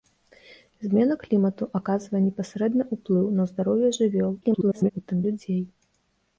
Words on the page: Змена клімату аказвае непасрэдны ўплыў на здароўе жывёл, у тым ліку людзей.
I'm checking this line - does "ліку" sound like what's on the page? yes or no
no